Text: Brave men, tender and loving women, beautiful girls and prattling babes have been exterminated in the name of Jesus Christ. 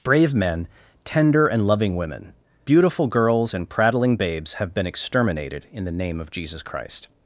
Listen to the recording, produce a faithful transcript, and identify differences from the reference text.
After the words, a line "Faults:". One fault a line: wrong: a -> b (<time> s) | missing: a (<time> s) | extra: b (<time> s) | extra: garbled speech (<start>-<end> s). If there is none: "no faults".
Brave men, tender and loving women, beautiful girls and prattling babes have been exterminated in the name of Jesus Christ.
Faults:
no faults